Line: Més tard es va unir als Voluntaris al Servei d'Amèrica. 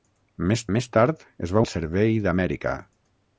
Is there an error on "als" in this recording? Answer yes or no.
yes